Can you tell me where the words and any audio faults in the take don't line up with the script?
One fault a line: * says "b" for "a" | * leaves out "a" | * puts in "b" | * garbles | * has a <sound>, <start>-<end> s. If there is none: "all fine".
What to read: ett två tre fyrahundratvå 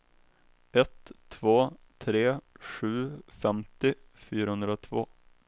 * puts in "sju femtio"